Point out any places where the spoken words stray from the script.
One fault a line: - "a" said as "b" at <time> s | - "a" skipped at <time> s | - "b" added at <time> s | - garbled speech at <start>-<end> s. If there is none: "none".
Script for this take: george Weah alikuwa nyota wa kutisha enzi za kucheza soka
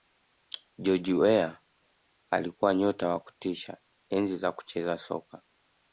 none